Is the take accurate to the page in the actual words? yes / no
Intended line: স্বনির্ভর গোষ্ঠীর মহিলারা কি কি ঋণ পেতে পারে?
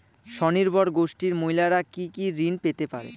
yes